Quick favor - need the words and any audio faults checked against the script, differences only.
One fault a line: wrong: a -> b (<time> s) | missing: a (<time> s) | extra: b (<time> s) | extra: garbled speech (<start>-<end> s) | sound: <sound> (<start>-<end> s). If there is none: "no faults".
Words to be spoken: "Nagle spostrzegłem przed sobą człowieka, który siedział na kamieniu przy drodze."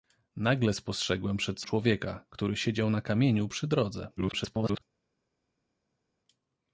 missing: sobą (1.6 s)
extra: garbled speech (4.2-4.8 s)